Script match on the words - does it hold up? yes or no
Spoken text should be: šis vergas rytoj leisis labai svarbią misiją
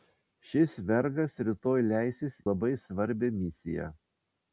yes